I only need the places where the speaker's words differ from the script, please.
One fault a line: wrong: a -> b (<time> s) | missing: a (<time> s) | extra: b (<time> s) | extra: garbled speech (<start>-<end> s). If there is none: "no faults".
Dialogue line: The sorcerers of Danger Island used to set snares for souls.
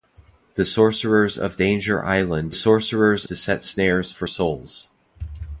wrong: used -> sorcerers (2.5 s)